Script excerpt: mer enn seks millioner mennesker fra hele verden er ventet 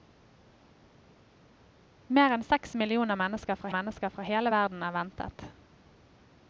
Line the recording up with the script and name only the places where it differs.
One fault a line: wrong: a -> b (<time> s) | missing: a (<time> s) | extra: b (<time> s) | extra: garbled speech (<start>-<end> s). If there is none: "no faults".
extra: mennesker fra (3.7 s)